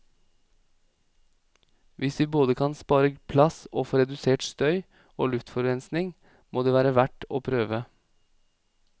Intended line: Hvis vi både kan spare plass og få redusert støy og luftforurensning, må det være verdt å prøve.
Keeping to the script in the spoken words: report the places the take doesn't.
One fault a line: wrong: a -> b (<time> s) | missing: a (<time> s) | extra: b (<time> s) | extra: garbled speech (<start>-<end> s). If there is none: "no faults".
no faults